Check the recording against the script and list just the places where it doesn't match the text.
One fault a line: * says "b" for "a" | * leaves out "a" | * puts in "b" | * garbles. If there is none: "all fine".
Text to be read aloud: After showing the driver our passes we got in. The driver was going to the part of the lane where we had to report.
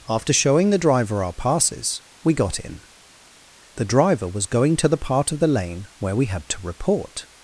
all fine